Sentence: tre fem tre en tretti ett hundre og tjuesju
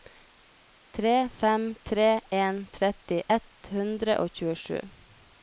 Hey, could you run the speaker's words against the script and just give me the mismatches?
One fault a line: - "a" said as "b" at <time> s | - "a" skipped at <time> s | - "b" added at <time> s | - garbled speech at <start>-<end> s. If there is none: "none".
none